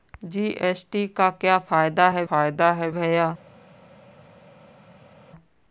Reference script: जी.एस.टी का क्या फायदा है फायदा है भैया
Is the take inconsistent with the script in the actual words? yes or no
no